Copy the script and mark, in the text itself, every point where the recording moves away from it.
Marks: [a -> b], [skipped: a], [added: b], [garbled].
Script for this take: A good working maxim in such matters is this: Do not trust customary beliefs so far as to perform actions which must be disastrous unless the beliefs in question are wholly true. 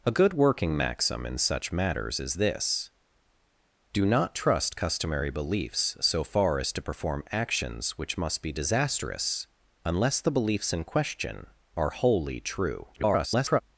A good working maxim in such matters is this: Do not trust customary beliefs so far as to perform actions which must be disastrous unless the beliefs in question are wholly true. [garbled]